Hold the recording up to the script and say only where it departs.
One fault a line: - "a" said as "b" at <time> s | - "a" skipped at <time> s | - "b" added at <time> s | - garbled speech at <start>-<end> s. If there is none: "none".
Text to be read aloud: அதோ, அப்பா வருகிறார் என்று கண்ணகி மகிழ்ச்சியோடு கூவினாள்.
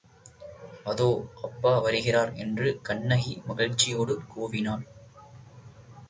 none